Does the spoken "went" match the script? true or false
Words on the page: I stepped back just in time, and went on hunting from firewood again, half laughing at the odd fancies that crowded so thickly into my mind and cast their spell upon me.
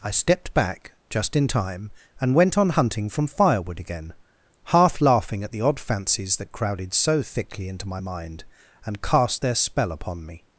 true